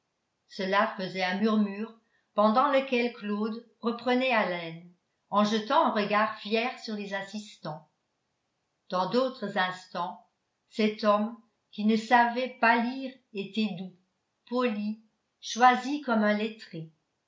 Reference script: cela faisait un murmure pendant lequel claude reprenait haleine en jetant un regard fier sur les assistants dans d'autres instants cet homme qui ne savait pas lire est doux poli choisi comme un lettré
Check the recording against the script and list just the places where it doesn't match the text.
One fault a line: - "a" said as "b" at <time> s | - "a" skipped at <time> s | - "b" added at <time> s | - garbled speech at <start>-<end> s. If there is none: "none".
- "est" said as "était" at 13.3 s